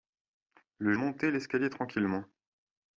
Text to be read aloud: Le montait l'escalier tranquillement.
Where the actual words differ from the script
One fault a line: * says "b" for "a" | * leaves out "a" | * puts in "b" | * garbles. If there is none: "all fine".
all fine